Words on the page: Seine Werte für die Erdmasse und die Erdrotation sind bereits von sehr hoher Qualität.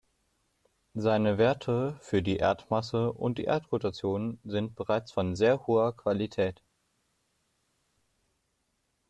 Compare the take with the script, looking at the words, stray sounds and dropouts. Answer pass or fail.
pass